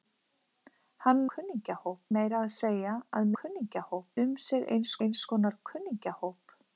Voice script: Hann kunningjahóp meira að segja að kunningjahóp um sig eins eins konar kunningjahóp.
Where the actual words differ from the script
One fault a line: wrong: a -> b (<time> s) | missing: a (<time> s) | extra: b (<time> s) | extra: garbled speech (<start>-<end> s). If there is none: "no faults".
no faults